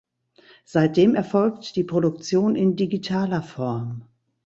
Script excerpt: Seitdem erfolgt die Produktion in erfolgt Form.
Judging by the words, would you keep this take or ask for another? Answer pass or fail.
fail